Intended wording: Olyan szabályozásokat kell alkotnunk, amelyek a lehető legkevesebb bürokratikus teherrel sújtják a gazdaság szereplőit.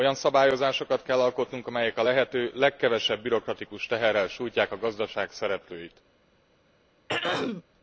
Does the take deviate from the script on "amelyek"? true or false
false